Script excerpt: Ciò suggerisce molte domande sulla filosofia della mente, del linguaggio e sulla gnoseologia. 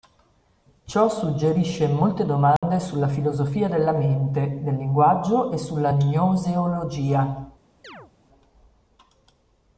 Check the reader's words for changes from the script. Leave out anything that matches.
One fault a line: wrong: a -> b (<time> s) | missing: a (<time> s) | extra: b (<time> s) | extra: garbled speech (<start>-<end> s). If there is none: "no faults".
no faults